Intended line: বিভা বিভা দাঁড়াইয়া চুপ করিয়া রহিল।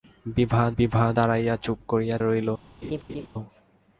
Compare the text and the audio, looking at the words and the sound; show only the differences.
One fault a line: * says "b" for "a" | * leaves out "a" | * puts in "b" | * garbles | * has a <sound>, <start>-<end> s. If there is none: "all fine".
* has a laugh, 2.8-3.3 s